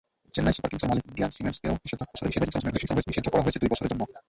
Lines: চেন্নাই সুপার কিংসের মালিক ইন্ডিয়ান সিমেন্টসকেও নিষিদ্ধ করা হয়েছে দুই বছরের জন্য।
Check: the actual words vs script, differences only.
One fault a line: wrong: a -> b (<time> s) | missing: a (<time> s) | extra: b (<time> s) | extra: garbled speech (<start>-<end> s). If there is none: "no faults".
extra: garbled speech (2.1-3.0 s)